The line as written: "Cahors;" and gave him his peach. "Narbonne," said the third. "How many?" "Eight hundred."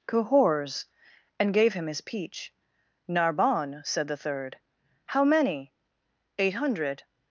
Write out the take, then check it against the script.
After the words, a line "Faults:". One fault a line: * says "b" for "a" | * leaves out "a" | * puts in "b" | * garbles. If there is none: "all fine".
"Cahors;" and gave him his peach. "Narbonne," said the third. "How many?" "Eight hundred."
Faults:
all fine